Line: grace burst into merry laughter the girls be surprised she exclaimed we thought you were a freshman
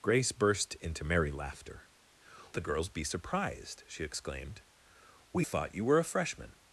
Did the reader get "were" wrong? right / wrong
right